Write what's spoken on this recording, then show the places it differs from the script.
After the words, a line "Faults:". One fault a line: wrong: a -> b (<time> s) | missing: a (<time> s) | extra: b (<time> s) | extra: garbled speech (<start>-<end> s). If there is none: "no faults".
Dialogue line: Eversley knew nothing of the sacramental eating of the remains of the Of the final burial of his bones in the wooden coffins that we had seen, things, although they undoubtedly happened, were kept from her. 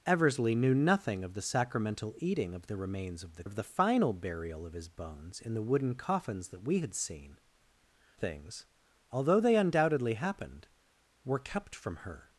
Eversley knew nothing of the sacramental eating of the remains of the Of the final burial of his bones in the wooden coffins that we had seen, things, although they undoubtedly happened, were kept from her.
Faults:
no faults